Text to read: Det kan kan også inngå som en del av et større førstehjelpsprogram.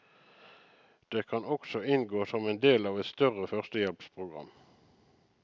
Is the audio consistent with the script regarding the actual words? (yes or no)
no